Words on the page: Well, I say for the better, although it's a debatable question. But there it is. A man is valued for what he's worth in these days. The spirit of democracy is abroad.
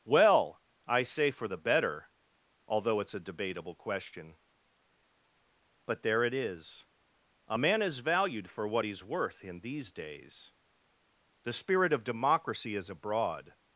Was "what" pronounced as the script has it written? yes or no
yes